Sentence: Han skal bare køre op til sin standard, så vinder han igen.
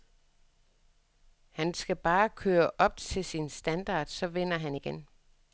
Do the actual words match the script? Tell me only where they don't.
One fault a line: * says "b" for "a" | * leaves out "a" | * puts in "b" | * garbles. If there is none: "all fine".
all fine